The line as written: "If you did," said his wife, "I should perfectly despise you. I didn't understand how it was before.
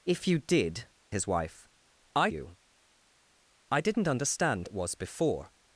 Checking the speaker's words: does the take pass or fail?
fail